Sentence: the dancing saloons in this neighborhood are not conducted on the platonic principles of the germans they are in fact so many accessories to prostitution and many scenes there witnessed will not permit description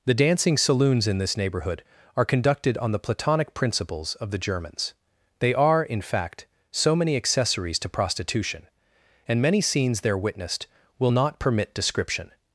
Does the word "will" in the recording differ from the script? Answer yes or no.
no